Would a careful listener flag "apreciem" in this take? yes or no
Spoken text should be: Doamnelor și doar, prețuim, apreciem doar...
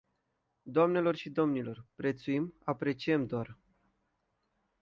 no